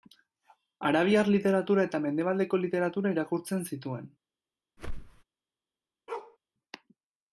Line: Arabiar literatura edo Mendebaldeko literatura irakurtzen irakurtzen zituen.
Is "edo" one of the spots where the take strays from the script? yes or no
yes